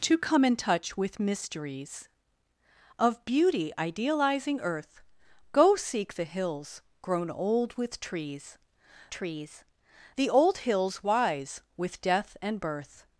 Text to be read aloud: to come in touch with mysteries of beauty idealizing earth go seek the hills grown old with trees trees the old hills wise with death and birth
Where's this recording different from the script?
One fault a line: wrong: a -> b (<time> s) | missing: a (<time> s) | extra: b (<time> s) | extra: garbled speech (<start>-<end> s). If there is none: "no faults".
no faults